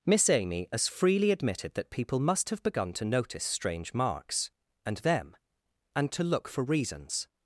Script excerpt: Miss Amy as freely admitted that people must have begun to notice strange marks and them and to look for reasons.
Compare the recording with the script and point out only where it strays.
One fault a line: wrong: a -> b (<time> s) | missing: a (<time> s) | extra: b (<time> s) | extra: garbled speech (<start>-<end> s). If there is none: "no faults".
no faults